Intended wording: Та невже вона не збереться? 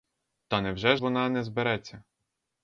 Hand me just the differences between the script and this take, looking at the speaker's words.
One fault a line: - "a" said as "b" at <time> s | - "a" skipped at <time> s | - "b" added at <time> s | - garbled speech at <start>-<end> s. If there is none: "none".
none